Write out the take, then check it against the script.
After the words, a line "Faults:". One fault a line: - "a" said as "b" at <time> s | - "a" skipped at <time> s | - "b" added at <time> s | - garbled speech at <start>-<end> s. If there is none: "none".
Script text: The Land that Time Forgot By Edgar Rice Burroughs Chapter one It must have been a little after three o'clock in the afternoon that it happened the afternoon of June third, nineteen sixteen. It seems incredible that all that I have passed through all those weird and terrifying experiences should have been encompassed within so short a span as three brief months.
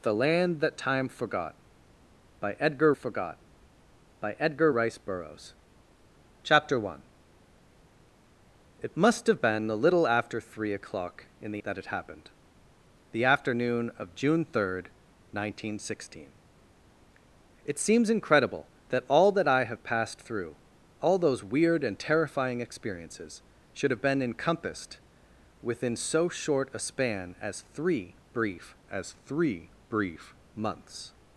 The Land that Time Forgot By Edgar Forgot By Edgar Rice Burroughs Chapter one It must have been a little after three o'clock in the that it happened the afternoon of June third, nineteen sixteen. It seems incredible that all that I have passed through all those weird and terrifying experiences should have been encompassed within so short a span as three brief as three brief months.
Faults:
- "Forgot By Edgar" added at 2.9 s
- "afternoon" skipped at 11.6 s
- "as three brief" added at 28.9 s